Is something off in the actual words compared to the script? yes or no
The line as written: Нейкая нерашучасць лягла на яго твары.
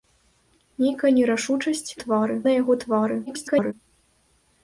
yes